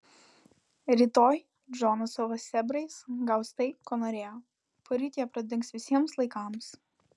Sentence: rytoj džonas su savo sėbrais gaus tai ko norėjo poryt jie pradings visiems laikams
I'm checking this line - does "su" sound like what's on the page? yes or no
no